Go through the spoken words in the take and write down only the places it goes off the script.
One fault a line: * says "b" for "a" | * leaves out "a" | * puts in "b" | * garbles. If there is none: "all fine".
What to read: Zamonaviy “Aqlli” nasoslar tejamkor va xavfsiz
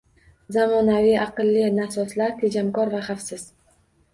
all fine